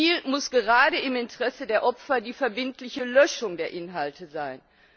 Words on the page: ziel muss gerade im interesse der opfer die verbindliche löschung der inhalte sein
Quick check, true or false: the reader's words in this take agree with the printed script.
true